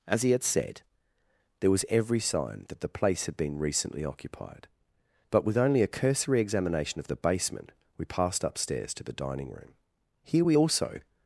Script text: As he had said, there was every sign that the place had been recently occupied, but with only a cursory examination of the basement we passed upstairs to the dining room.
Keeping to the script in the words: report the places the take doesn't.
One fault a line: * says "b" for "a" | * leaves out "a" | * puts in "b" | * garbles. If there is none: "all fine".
* puts in "Here we also"